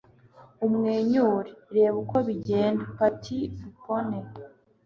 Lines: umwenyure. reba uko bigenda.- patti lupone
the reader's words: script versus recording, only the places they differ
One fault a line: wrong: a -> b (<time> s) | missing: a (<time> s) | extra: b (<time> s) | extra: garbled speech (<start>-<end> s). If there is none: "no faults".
no faults